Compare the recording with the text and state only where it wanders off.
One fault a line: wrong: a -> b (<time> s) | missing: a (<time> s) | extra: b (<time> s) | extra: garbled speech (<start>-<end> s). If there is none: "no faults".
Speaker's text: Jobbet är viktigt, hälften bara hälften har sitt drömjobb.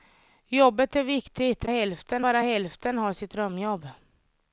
no faults